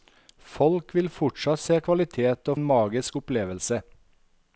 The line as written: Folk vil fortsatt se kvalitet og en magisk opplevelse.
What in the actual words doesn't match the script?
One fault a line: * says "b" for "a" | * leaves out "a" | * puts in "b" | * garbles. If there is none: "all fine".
all fine